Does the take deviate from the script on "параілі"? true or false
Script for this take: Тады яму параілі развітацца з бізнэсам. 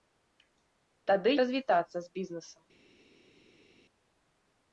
true